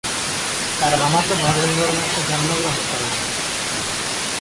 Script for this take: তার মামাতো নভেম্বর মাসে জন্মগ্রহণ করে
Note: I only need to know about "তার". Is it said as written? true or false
true